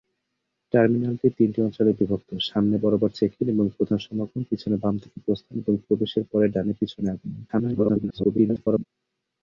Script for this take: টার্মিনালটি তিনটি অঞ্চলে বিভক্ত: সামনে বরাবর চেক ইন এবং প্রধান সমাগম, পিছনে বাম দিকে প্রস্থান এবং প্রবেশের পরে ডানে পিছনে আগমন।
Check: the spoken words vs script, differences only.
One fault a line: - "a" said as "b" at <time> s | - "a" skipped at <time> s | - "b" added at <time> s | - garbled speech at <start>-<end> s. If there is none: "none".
- garbled speech at 7.5-8.9 s